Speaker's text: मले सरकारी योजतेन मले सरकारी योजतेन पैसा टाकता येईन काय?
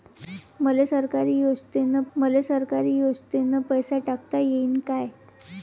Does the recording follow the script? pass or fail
pass